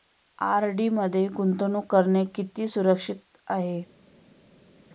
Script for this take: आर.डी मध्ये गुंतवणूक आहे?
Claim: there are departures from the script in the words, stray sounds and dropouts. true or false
true